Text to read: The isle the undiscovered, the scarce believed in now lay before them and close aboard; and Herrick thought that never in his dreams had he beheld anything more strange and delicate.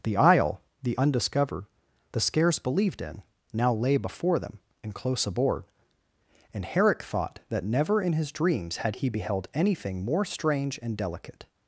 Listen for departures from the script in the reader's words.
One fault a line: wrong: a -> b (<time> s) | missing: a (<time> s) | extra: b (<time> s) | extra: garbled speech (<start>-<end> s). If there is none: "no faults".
no faults